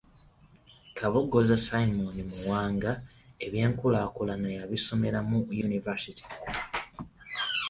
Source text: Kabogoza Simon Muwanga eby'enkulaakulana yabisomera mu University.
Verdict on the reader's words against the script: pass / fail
pass